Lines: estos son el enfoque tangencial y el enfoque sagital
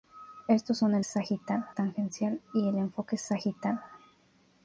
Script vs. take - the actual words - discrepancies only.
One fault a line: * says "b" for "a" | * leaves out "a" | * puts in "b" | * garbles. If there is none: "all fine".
* says "sagital" for "enfoque"